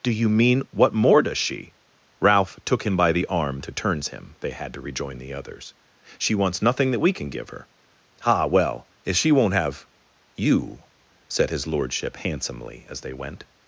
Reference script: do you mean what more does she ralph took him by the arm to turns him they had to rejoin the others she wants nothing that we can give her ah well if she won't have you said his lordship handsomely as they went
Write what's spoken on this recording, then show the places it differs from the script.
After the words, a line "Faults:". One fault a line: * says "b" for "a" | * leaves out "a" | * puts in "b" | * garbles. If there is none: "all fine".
do you mean what more does she ralph took him by the arm to turns him they had to rejoin the others she wants nothing that we can give her ah well if she won't have you said his lordship handsomely as they went
Faults:
all fine